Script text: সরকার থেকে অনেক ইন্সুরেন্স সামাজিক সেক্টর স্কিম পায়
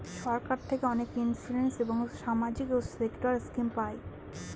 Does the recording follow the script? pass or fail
fail